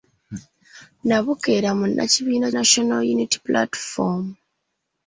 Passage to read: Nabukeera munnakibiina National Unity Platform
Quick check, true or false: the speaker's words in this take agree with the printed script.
true